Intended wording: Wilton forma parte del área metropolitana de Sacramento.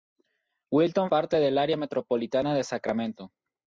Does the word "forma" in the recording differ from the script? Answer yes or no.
yes